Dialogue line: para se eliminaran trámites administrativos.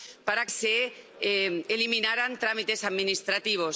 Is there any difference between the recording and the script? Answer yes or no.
no